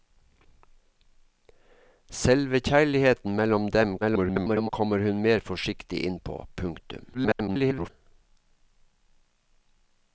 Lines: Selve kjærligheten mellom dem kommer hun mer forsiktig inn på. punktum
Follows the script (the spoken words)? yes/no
no